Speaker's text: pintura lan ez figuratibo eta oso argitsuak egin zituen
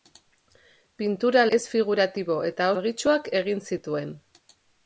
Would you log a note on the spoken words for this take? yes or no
yes